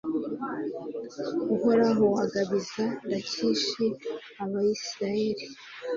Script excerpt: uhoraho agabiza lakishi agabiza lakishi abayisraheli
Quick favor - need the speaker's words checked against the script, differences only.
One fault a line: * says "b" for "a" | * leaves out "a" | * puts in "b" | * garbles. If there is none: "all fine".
* leaves out "agabiza lakishi"